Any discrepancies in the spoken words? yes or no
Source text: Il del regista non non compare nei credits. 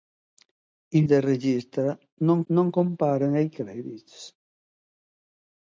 no